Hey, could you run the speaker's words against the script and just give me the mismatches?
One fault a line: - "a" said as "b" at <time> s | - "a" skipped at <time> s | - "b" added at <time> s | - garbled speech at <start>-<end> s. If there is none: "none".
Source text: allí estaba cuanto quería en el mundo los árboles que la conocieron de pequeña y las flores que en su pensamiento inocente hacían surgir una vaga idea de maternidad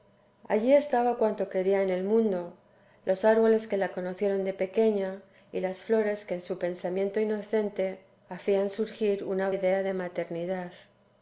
- "vaga" skipped at 9.5 s